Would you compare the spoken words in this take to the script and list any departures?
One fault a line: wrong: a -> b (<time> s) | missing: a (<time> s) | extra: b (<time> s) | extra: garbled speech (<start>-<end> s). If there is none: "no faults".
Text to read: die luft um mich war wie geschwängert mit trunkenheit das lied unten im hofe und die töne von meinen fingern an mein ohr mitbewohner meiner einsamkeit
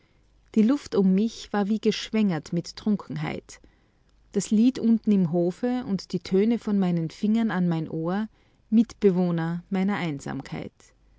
no faults